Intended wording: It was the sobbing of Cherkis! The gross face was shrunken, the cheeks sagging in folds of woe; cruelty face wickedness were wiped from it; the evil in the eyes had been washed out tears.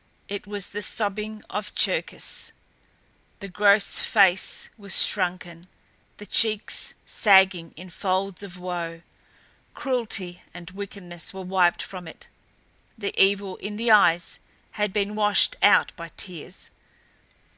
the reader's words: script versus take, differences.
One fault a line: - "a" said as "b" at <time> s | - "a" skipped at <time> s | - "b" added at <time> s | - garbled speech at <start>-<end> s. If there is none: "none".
- "face" said as "and" at 10.5 s
- "by" added at 16.0 s